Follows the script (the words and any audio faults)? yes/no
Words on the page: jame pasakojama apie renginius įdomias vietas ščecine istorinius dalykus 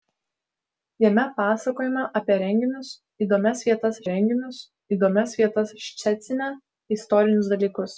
no